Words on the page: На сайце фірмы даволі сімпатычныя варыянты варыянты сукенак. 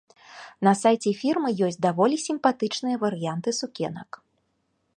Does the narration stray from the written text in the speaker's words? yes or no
yes